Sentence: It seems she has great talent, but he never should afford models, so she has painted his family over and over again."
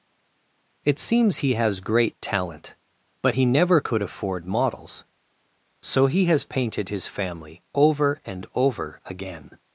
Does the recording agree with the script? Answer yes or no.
no